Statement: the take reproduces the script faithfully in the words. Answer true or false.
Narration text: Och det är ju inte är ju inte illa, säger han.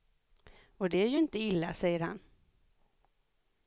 false